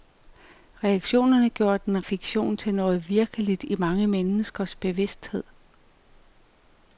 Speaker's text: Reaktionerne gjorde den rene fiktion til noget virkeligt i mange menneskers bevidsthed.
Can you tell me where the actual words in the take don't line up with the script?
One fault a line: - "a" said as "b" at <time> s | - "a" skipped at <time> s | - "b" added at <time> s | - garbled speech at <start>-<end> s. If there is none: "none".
- "rene" skipped at 2.1 s